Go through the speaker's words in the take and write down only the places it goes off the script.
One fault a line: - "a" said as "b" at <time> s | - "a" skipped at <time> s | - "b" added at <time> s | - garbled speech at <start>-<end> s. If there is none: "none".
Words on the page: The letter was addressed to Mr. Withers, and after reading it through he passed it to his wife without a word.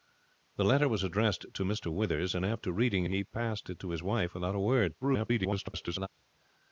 - "it through" skipped at 3.0 s
- garbled speech at 5.0-6.1 s